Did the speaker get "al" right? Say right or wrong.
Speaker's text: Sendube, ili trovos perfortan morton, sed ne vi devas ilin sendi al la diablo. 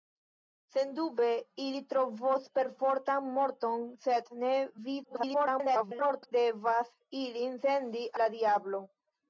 wrong